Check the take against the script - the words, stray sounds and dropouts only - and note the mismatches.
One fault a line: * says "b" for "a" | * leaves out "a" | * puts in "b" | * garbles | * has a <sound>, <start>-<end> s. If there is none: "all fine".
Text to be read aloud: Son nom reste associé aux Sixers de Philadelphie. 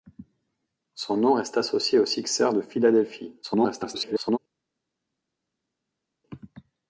* garbles